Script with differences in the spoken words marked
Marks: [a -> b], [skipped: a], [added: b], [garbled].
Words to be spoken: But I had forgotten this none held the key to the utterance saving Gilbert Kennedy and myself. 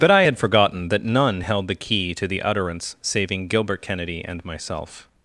But I had forgotten [this -> that] none held the key to the utterance saving Gilbert Kennedy and myself.